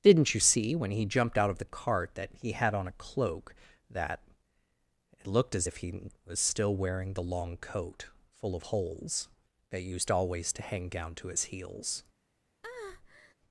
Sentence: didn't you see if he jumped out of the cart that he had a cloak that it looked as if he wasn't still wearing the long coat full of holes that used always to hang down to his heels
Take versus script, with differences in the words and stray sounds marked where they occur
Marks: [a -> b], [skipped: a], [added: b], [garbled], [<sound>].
didn't you see [if -> when] he jumped out of the cart that he had [added: on] a cloak that it looked as if he [wasn't -> was] still wearing the long coat full of holes that used always to hang down to his heels [breath]